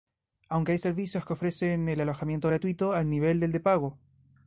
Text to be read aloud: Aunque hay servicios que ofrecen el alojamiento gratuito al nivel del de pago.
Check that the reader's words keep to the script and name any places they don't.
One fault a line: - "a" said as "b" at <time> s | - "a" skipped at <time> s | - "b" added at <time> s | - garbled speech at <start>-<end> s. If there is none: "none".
none